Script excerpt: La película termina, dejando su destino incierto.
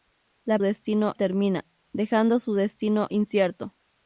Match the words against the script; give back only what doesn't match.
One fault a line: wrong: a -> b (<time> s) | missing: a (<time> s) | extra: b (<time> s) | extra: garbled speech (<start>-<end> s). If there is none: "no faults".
wrong: película -> destino (0.6 s)